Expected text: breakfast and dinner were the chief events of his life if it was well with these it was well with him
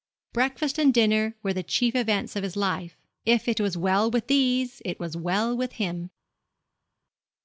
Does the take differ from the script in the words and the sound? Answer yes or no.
no